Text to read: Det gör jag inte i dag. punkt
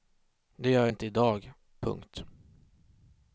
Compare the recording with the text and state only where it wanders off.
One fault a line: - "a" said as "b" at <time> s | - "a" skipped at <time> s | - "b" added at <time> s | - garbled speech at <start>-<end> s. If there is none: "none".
- "jag" skipped at 0.9 s